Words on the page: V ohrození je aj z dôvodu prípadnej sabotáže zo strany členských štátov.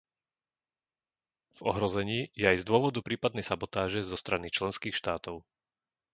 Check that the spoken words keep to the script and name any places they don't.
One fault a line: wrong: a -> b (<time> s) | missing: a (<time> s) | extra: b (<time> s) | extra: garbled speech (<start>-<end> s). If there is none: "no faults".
no faults